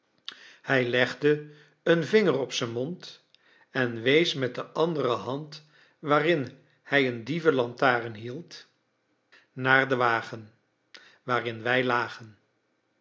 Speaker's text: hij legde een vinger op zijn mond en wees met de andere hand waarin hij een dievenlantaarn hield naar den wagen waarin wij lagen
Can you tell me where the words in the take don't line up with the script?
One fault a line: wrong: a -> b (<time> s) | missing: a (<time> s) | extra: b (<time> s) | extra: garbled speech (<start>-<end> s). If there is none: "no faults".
no faults